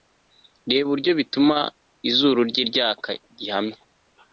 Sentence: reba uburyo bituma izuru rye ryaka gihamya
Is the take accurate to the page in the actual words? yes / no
yes